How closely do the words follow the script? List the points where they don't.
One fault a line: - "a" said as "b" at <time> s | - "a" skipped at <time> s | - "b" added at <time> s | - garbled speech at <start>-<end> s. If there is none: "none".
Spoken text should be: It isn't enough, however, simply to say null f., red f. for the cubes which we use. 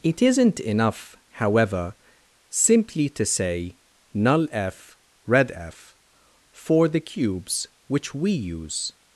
none